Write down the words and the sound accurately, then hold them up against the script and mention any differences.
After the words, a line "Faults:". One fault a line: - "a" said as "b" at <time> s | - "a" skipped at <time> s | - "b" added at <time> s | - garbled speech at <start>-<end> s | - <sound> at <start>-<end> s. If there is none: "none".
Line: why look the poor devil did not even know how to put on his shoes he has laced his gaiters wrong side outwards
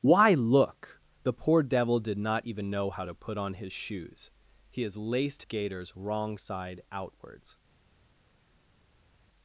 why look the poor devil did not even know how to put on his shoes he has laced gaiters wrong side outwards
Faults:
- "his" skipped at 5.4 s